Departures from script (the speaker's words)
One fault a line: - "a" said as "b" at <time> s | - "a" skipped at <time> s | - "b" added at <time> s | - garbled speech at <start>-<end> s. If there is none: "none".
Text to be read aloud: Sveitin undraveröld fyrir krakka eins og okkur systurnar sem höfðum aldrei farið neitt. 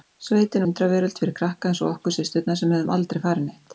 none